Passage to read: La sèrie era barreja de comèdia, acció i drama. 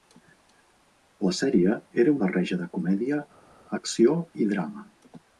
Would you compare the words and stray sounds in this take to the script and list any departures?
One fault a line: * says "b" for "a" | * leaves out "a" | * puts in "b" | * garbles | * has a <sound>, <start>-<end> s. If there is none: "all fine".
all fine